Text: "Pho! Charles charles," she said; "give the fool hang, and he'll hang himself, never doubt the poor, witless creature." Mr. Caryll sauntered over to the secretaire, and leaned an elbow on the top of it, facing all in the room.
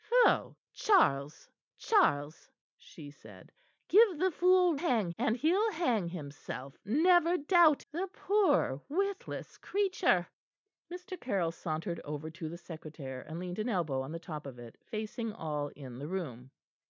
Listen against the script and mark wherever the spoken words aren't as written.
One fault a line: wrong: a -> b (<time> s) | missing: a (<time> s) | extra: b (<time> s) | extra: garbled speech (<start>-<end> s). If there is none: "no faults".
no faults